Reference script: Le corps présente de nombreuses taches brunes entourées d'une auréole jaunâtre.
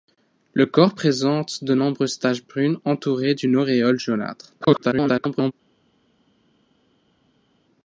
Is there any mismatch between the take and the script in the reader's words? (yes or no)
yes